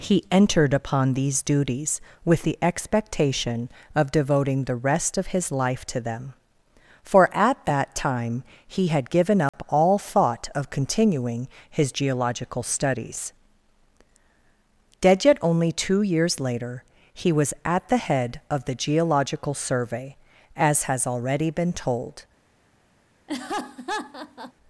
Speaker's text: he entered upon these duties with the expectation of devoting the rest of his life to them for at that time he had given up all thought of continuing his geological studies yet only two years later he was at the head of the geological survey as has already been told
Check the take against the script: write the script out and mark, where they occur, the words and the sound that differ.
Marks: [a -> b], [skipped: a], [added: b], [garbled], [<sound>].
he entered upon these duties with the expectation of devoting the rest of his life to them for at that time he had given up [dropout] all thought of continuing his geological studies [added: dead] yet only two years later he was at the head of the geological survey as has already been told [laugh]